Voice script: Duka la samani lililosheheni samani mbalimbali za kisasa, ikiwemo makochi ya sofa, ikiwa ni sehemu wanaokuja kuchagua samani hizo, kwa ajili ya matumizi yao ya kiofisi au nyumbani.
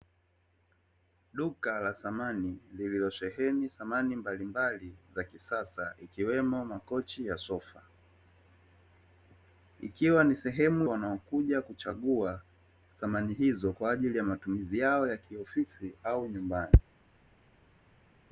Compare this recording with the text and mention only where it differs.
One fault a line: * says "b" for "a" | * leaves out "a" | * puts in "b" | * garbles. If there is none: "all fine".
all fine